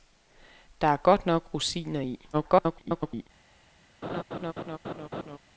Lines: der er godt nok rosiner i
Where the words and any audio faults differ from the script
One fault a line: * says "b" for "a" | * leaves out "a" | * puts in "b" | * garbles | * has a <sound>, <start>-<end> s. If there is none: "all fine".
* garbles
* has a laugh, 4.0-5.4 s